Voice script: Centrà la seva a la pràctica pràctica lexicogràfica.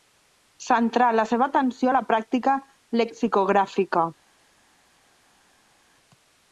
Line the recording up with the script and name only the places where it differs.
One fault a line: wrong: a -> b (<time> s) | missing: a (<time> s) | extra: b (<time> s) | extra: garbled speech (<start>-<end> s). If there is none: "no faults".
extra: atenció (1.5 s)
missing: pràctica (2.6 s)